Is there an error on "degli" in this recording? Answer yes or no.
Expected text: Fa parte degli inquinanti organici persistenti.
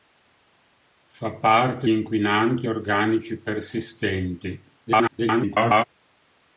yes